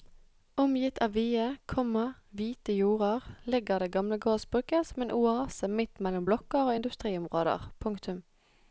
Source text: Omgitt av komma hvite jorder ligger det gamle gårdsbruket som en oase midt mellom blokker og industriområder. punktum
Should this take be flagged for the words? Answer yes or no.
yes